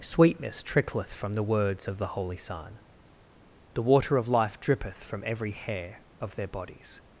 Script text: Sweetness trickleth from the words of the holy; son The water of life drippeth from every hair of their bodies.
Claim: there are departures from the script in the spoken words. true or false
false